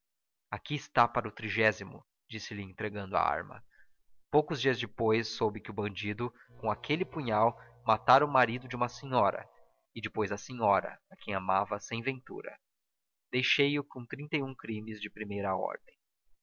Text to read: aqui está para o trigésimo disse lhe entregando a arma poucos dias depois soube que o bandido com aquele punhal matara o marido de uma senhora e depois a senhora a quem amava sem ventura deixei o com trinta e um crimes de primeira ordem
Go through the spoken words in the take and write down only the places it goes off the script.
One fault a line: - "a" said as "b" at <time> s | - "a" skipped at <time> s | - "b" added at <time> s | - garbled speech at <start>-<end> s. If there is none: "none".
none